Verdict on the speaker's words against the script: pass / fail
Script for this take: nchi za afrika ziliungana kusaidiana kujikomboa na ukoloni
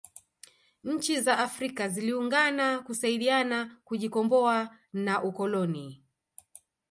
pass